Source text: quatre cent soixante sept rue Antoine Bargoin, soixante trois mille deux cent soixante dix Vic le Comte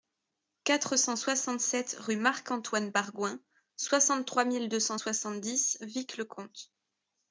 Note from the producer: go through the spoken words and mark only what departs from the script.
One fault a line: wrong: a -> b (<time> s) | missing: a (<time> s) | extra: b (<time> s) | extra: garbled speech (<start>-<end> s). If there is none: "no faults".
extra: Marc (2.1 s)